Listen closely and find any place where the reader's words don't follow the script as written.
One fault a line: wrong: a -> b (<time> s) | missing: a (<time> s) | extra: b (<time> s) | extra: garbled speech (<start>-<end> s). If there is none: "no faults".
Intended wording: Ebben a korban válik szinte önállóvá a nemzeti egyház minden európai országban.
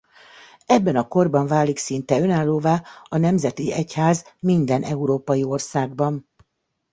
no faults